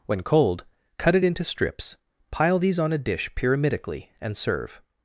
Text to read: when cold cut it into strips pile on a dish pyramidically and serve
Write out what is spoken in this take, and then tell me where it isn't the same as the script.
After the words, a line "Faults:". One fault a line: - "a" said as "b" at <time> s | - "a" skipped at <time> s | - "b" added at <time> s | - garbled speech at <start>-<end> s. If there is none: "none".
when cold cut it into strips pile these on a dish pyramidically and serve
Faults:
- "these" added at 2.6 s